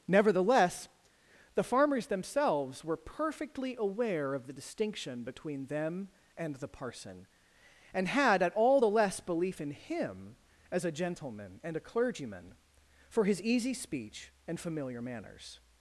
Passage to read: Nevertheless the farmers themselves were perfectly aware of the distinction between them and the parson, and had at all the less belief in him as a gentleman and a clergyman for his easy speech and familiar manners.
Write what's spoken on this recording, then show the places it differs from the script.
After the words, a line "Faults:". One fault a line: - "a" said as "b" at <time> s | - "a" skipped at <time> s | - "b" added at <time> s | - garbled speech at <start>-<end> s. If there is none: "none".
Nevertheless the farmers themselves were perfectly aware of the distinction between them and the parson, and had at all the less belief in him as a gentleman and a clergyman for his easy speech and familiar manners.
Faults:
none